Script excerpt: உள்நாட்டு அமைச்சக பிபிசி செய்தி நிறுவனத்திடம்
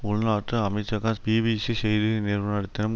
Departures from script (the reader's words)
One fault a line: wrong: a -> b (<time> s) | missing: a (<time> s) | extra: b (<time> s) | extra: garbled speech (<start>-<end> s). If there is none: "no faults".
no faults